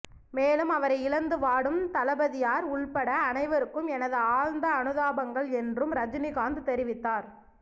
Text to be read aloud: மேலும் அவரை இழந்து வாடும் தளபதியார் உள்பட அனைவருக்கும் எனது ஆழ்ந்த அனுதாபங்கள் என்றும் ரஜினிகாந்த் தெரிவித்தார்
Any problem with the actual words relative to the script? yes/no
no